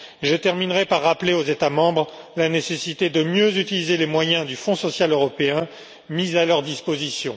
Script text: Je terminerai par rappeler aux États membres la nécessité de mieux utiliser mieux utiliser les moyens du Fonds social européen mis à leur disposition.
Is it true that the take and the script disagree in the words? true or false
true